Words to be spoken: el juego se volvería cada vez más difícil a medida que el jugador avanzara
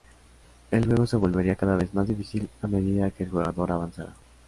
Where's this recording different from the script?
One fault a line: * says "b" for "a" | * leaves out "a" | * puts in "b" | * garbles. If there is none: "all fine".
all fine